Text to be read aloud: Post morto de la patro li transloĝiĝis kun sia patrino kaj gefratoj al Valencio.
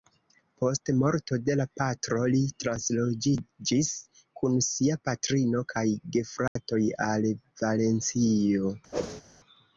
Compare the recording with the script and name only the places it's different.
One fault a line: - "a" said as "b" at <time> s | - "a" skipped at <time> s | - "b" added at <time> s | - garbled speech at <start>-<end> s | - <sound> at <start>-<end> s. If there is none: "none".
- dropout at 6.5-6.6 s
- whoosh at 8.9-9.2 s